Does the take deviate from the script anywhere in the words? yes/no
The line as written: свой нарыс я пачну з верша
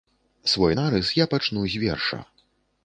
no